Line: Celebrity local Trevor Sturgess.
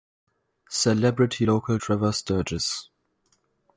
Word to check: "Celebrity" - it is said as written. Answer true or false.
true